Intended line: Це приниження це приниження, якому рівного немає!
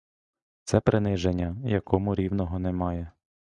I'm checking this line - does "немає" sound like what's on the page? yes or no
yes